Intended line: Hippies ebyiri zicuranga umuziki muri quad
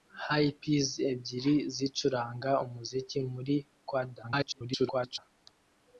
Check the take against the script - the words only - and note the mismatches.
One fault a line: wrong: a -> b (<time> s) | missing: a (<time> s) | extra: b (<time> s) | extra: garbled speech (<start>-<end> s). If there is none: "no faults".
extra: garbled speech (4.2-5.2 s)